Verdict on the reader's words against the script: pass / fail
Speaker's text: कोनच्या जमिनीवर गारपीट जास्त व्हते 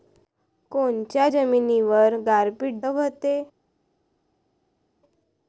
fail